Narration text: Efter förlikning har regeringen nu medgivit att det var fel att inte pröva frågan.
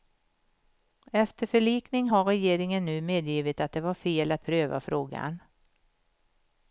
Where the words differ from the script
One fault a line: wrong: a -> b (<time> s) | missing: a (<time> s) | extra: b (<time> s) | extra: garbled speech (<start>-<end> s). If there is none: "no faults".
missing: inte (4.4 s)